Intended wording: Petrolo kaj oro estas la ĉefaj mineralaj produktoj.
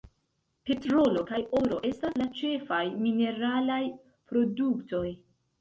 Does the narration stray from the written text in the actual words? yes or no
no